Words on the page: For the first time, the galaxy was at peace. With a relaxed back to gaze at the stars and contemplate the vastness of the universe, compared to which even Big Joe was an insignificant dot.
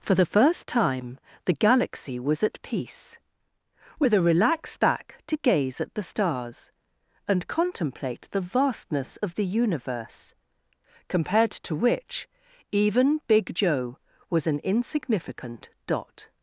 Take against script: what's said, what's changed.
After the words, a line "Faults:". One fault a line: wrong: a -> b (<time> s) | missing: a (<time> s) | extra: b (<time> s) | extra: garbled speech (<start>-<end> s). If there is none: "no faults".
For the first time, the galaxy was at peace. With a relaxed back to gaze at the stars and contemplate the vastness of the universe, compared to which even Big Joe was an insignificant dot.
Faults:
no faults